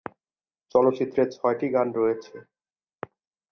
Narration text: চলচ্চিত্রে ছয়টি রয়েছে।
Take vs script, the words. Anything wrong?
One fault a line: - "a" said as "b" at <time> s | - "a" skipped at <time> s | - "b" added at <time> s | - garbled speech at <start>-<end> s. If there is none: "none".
- "গান" added at 1.8 s